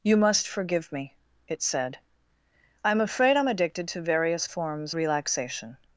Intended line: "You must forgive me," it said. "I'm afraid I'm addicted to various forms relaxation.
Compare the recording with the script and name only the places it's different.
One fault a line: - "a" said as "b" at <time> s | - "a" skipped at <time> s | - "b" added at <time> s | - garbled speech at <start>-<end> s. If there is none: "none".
none